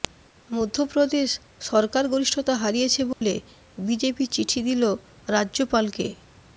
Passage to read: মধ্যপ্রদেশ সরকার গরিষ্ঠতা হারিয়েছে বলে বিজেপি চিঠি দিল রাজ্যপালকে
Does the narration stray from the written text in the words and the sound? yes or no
yes